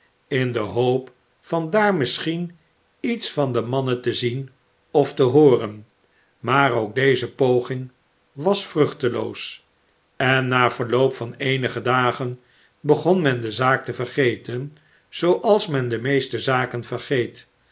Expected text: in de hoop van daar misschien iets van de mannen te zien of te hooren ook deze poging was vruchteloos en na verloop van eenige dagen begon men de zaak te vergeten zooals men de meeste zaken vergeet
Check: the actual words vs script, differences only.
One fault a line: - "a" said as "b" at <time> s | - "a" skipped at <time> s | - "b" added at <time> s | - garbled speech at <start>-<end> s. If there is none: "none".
- "maar" added at 6.4 s